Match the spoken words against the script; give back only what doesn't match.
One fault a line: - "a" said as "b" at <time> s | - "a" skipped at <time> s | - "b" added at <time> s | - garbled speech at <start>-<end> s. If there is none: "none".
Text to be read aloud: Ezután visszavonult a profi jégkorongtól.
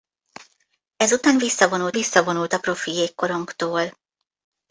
- "visszavonult" added at 1.9 s